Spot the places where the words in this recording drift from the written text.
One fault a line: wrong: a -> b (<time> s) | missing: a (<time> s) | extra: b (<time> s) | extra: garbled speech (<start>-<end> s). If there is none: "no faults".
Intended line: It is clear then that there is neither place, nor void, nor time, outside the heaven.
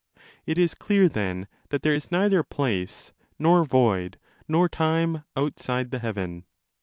no faults